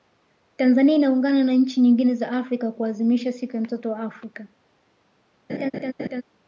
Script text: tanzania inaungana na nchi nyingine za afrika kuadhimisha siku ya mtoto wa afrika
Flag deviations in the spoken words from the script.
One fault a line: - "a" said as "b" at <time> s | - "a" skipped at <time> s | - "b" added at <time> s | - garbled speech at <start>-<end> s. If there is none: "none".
none